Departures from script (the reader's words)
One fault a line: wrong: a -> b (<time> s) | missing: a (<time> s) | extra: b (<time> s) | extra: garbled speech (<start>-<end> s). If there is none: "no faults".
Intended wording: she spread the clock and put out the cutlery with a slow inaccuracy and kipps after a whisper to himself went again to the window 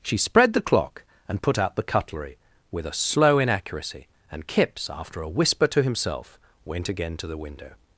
no faults